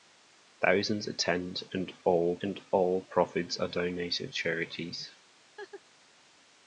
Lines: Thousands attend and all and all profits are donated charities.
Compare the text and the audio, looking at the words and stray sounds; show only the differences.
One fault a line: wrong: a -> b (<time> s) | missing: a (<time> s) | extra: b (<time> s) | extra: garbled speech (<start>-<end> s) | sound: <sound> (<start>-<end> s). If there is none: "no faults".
sound: laugh (5.6-5.8 s)